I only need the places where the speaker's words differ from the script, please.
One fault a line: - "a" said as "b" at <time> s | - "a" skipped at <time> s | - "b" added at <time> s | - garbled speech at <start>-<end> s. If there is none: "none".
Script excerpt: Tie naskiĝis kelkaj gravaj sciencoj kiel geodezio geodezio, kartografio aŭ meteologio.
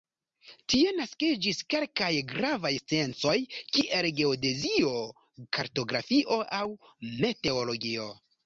- "geodezio" skipped at 5.0 s